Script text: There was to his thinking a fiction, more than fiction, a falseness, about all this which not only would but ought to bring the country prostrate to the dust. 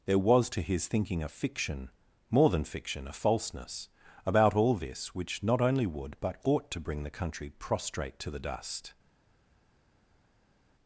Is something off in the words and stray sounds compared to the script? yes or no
no